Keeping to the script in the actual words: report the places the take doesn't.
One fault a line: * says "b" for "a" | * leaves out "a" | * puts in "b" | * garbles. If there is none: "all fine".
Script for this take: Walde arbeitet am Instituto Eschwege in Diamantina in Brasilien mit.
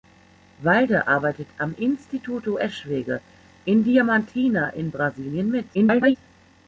* garbles